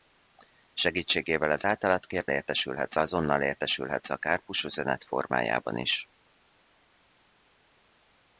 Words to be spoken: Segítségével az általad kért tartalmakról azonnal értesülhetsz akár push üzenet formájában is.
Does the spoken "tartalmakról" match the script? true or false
false